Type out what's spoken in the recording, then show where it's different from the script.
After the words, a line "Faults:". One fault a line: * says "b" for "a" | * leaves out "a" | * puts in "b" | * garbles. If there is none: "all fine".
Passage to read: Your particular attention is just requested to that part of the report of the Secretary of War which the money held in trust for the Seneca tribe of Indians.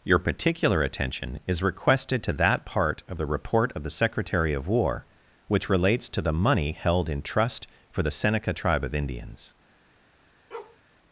Your particular attention is requested to that part of the report of the Secretary of War which relates to the money held in trust for the Seneca tribe of Indians.
Faults:
* leaves out "just"
* puts in "relates to"